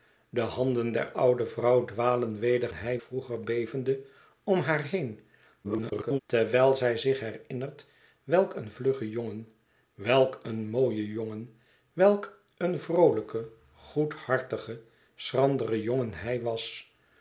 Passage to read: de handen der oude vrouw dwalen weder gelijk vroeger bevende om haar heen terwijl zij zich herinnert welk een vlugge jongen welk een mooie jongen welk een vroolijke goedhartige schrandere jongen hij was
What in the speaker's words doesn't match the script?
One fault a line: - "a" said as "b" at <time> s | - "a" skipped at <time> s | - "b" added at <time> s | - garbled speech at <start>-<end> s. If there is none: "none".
- "gelijk" said as "hij" at 2.7 s
- garbled speech at 5.6-6.2 s